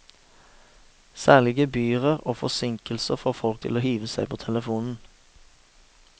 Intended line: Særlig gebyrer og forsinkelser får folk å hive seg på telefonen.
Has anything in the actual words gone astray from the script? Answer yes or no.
yes